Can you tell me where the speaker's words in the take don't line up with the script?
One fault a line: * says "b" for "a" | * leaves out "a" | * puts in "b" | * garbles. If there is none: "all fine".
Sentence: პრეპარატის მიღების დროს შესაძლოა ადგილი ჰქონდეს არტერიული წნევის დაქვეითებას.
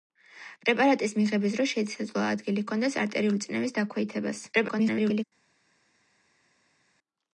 * garbles